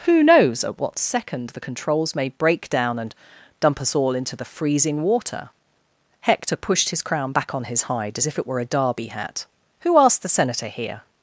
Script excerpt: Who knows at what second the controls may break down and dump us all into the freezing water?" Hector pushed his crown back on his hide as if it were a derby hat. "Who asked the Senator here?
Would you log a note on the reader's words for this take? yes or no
no